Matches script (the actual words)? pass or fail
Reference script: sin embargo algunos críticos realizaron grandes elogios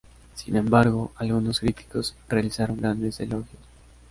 pass